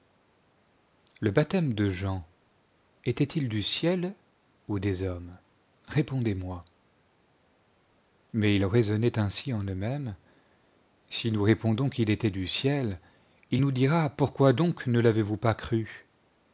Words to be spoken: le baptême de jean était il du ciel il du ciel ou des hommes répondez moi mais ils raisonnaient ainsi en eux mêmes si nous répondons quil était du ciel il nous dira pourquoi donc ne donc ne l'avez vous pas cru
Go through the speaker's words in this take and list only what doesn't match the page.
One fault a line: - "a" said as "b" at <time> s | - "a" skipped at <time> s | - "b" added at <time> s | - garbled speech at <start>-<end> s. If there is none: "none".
- "il du ciel" skipped at 4.2 s
- "donc ne" skipped at 15.0 s